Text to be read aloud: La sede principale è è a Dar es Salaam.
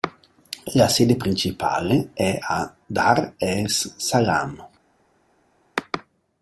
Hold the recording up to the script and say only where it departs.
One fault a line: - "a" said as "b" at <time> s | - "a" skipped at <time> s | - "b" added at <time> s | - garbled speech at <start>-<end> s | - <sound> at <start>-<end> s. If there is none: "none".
- "è" skipped at 2.4 s